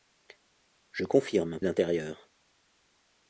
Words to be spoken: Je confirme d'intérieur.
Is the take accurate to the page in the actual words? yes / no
yes